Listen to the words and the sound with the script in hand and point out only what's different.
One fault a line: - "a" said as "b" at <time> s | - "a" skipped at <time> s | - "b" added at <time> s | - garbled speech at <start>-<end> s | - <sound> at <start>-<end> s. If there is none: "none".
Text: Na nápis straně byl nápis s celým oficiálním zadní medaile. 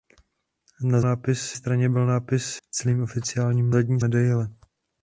none